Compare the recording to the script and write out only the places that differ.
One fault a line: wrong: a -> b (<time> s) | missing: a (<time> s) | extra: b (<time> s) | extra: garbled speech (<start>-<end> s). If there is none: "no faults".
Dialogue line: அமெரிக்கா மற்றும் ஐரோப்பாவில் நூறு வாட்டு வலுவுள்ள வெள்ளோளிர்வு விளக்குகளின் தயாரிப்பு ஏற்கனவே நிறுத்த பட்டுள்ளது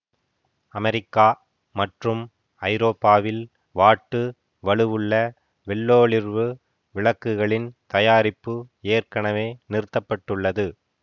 missing: நூறு (3.4 s)